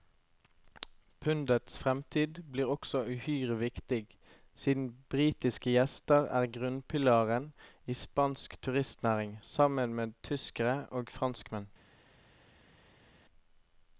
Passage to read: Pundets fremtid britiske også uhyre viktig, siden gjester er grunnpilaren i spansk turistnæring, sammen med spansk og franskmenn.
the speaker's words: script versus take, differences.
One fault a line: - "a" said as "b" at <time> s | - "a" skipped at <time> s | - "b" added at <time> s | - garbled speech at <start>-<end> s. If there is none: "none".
- "britiske" said as "blir" at 2.5 s
- "britiske" added at 5.1 s
- "spansk" said as "tyskere" at 10.2 s